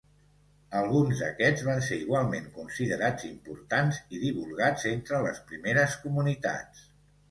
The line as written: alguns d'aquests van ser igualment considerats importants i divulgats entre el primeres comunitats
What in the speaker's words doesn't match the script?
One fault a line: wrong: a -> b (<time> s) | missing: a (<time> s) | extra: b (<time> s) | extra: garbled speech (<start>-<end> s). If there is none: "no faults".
wrong: el -> les (5.3 s)